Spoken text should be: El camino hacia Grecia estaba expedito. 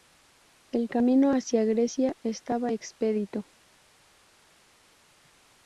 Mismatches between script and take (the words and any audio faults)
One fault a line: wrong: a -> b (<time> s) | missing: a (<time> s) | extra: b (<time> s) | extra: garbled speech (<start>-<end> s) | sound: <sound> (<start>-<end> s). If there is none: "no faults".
no faults